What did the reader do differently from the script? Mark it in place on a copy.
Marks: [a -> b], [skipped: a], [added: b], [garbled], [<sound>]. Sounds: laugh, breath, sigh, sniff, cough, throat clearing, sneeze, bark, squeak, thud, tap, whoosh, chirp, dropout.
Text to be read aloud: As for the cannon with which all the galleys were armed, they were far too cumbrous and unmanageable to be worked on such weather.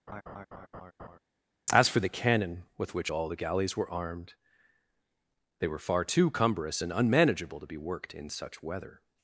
[laugh] As for the cannon with which all the galleys were armed, they were far too cumbrous and unmanageable to be worked [on -> in] such weather.